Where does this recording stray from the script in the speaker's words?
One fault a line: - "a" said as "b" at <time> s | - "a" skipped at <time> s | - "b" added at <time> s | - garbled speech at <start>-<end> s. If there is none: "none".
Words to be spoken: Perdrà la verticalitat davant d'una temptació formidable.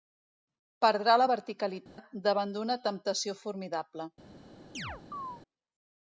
none